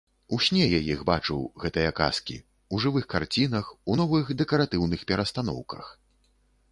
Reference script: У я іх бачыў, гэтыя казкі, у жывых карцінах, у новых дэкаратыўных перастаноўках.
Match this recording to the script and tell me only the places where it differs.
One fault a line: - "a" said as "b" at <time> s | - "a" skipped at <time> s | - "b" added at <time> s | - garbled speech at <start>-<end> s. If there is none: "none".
- "сне" added at 0.5 s